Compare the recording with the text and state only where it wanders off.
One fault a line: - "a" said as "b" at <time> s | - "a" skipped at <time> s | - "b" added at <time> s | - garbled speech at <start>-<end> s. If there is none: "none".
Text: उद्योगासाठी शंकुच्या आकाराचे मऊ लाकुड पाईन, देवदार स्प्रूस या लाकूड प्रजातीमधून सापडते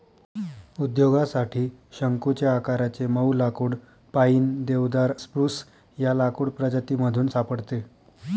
none